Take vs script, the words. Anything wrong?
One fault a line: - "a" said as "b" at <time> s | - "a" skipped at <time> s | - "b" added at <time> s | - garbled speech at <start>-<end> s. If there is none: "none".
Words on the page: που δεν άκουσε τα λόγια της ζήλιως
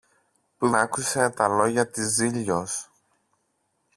- "δεν" skipped at 0.7 s